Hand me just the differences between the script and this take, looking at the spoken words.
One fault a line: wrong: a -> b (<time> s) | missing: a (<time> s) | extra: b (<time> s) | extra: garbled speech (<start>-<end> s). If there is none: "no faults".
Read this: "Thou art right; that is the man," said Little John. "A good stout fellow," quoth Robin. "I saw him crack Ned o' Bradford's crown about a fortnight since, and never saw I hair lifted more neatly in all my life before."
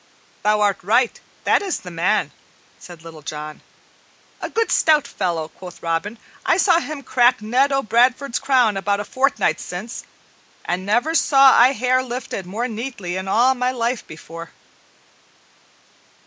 no faults